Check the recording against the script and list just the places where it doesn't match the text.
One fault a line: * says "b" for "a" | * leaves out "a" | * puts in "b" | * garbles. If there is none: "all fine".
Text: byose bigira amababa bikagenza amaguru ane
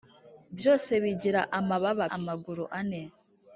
* leaves out "bikagenza"